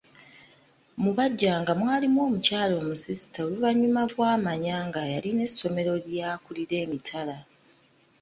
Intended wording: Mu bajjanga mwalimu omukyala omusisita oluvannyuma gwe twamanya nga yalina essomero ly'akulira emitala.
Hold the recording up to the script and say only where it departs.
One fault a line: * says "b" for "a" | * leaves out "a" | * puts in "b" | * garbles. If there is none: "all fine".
* leaves out "gwe"